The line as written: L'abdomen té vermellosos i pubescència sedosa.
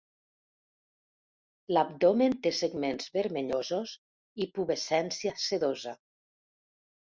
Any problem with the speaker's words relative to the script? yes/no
yes